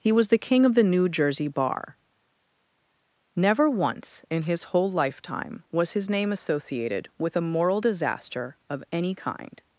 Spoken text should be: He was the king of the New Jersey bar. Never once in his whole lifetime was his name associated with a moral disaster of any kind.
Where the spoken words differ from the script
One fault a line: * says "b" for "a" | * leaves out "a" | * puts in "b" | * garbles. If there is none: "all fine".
all fine